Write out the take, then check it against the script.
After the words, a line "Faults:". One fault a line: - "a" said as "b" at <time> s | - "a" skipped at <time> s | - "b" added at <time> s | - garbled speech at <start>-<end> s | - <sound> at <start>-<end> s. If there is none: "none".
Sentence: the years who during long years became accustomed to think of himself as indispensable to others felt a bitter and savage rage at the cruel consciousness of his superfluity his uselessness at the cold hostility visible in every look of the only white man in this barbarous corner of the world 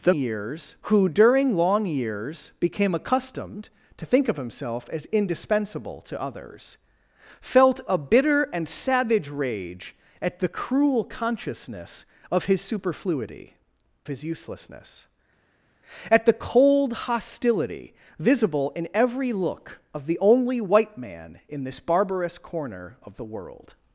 the years who during long years became accustomed to think of himself as indispensable to others felt a bitter and savage rage at the cruel consciousness of his superfluity his uselessness at the cold hostility visible in every look of the only white man in this barbarous corner of the world
Faults:
none